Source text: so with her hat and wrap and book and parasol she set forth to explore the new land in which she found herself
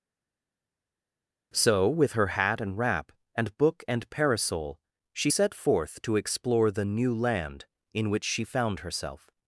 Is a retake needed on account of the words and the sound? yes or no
no